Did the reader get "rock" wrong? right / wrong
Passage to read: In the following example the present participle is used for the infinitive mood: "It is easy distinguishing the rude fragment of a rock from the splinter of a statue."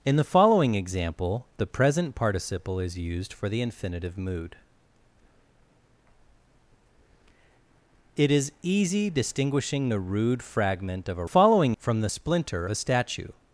wrong